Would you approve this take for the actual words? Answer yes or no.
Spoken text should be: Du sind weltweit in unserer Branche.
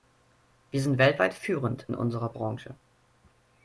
no